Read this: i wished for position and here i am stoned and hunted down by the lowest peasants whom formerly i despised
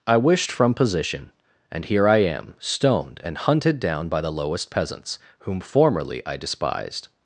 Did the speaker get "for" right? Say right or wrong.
wrong